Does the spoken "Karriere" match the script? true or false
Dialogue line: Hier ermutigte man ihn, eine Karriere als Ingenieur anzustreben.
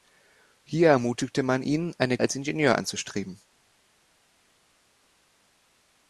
false